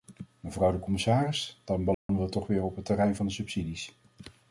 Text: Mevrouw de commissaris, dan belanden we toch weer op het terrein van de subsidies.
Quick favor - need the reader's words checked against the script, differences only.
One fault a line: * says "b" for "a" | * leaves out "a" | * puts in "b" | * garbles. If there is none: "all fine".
all fine